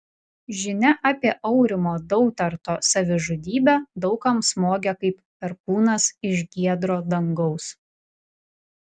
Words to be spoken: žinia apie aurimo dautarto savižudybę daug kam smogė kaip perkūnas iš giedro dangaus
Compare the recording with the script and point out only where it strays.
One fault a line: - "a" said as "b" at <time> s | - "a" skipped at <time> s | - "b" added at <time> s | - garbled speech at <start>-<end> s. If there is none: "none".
none